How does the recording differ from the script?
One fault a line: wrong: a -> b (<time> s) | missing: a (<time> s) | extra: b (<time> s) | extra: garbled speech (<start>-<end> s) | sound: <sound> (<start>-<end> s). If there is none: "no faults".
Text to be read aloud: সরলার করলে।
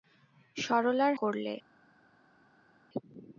no faults